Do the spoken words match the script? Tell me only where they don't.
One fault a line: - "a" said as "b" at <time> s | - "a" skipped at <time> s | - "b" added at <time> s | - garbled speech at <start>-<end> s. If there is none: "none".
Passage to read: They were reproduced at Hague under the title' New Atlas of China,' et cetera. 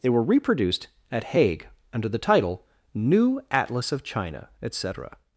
none